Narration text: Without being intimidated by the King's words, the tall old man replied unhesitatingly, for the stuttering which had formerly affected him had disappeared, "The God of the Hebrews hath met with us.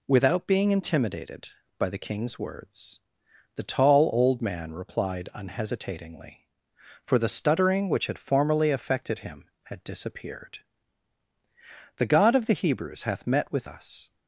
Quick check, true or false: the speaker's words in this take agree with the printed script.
true